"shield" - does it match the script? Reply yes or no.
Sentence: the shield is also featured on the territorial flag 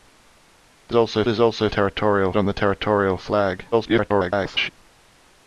no